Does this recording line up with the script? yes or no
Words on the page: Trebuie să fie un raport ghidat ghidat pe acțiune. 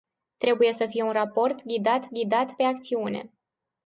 yes